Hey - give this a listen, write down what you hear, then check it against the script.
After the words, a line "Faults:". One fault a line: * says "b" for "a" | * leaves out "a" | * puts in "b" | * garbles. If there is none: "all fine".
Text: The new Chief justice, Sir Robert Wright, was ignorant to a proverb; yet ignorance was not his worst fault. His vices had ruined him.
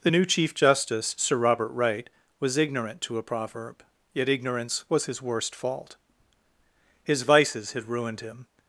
The new Chief justice, Sir Robert Wright, was ignorant to a proverb; yet ignorance was his worst fault. His vices had ruined him.
Faults:
* leaves out "not"